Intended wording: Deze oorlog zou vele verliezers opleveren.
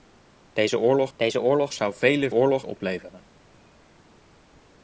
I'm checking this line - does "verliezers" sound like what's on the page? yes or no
no